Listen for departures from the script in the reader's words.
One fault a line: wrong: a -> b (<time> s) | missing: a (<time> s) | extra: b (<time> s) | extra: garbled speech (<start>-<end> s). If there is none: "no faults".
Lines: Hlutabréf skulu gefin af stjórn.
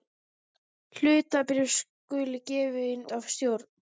no faults